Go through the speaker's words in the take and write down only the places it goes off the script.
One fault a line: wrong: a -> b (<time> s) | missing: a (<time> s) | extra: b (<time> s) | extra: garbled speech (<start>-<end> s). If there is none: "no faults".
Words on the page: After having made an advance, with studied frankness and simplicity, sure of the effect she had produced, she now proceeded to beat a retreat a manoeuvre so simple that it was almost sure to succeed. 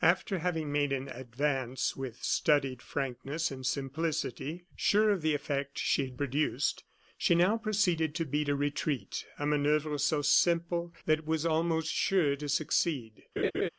no faults